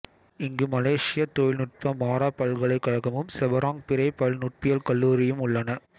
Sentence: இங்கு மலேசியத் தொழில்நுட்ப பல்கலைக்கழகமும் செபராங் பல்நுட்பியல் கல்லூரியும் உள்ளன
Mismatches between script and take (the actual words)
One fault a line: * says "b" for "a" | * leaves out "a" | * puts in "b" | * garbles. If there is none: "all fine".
* puts in "மாரா"
* puts in "பிறை"